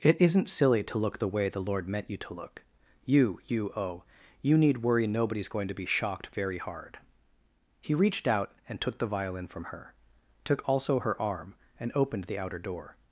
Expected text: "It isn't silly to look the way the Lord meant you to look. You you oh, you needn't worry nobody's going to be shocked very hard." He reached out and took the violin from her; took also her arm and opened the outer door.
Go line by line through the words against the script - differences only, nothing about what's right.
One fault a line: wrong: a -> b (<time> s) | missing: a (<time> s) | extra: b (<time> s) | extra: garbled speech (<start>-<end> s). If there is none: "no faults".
wrong: needn't -> need (4.6 s)